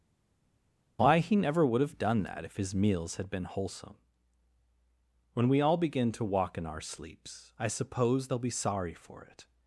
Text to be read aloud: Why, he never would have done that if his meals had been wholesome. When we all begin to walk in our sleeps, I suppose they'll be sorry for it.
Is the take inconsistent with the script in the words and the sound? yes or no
no